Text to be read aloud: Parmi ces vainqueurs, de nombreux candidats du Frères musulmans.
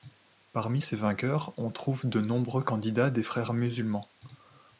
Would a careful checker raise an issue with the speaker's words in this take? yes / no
yes